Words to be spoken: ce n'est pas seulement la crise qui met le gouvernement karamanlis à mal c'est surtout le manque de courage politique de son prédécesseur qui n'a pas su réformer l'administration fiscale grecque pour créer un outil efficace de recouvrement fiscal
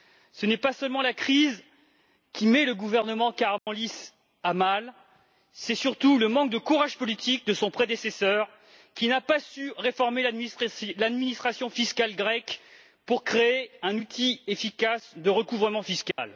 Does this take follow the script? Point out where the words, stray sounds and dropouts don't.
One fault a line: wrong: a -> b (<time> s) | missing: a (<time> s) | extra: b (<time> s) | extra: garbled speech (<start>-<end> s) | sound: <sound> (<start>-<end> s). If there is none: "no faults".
sound: dropout (3.6-3.7 s)
sound: dropout (16.1-16.2 s)